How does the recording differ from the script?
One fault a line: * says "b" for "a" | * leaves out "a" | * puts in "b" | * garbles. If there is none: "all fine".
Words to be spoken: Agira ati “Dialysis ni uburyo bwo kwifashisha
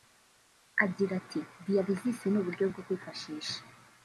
all fine